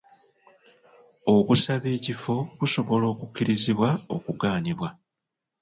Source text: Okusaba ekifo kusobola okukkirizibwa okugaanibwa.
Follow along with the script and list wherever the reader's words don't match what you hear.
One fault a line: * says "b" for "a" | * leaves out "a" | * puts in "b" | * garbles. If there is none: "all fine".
all fine